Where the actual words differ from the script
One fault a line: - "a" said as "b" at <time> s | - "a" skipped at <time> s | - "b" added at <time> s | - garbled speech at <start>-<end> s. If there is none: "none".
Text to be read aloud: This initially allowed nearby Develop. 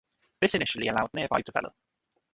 none